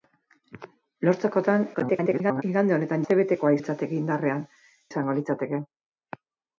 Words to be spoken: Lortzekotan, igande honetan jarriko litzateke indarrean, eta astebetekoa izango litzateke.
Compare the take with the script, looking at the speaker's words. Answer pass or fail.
fail